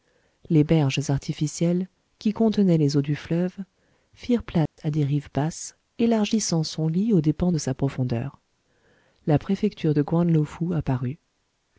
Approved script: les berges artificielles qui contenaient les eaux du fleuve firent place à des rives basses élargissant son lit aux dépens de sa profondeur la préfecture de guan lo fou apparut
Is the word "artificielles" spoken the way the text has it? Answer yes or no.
yes